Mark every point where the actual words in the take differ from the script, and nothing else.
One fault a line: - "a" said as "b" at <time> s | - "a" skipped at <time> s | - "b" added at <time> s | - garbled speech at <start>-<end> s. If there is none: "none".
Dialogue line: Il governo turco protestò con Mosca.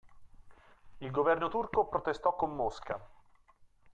none